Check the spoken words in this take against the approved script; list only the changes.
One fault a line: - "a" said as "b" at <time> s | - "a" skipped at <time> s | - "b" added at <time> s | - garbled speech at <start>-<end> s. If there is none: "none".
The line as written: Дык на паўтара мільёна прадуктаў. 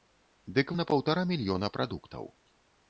none